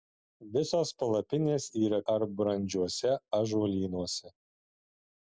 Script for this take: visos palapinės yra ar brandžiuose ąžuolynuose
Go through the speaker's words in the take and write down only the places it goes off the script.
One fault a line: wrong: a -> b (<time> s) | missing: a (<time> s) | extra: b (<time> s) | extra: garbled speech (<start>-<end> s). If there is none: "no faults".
no faults